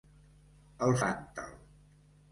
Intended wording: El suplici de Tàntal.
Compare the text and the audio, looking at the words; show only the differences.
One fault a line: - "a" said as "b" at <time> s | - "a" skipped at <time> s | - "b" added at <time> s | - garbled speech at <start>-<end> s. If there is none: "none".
- "suplici de" skipped at 0.9 s